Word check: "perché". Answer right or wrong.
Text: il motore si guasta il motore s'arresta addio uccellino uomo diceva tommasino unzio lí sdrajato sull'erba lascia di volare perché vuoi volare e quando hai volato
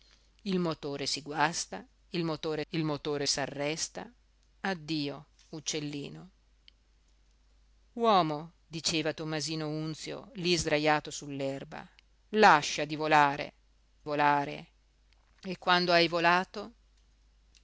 wrong